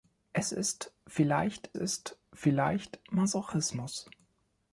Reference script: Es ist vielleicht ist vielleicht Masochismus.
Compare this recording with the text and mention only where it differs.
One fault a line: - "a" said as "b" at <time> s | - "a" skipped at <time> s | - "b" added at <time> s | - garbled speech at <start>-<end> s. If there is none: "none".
none